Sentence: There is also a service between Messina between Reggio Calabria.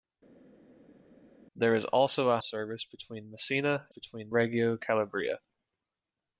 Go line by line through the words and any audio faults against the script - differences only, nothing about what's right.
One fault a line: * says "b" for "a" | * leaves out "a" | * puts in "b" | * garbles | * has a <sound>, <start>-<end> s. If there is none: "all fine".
all fine